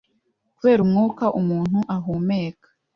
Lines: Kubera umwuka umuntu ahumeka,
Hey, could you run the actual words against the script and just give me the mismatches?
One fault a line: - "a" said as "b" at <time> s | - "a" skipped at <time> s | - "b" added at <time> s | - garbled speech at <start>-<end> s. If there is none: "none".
none